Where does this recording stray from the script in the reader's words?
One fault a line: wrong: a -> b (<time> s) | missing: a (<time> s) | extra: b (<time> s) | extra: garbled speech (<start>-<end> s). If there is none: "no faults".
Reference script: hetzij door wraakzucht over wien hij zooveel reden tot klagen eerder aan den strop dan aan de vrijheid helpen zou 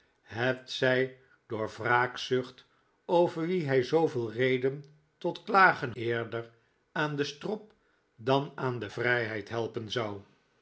no faults